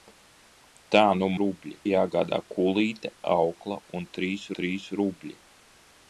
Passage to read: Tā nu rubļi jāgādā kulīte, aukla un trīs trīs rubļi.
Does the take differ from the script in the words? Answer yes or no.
no